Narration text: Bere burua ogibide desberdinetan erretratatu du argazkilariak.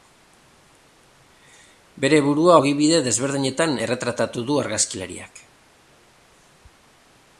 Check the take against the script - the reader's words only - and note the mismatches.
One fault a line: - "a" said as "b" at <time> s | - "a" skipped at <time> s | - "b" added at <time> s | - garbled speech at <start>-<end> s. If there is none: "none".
none